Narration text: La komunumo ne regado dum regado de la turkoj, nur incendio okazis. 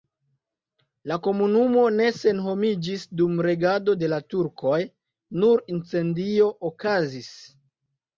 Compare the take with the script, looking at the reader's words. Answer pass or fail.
fail